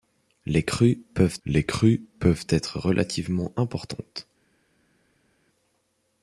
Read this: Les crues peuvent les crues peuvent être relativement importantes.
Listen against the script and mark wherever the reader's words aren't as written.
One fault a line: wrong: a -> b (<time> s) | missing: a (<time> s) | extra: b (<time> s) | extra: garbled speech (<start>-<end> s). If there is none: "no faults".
no faults